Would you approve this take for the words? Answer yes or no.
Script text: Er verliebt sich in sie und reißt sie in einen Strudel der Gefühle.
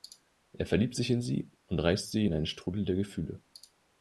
yes